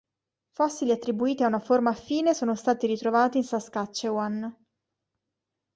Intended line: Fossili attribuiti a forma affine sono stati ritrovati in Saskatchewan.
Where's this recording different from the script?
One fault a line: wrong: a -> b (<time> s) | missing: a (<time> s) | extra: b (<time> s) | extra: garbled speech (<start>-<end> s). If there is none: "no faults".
extra: una (1.5 s)